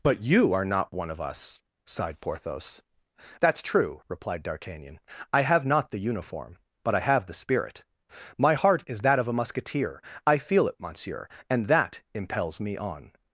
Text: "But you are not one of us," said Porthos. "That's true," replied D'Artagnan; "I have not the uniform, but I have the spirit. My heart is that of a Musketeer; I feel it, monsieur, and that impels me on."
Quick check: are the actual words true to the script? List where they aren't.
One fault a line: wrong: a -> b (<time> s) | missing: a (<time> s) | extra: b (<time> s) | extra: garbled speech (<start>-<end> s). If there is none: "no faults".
wrong: said -> sighed (1.9 s)